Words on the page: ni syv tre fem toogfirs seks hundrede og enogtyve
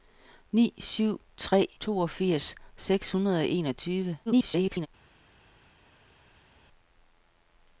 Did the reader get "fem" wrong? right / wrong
wrong